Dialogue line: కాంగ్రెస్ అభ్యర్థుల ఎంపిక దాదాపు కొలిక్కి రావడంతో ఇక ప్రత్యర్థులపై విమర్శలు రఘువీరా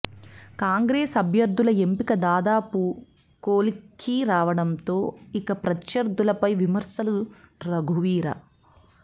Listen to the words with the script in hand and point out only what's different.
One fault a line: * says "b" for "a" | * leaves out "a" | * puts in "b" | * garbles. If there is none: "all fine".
all fine